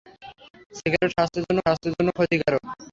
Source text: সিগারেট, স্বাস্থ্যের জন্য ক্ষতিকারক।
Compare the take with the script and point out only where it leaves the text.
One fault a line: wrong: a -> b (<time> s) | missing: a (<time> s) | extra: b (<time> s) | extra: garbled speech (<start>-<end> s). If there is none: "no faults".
extra: স্বাস্থ্যের জন্য (1.6 s)